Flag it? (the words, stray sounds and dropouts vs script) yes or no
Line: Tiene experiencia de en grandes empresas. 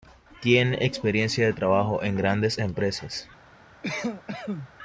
yes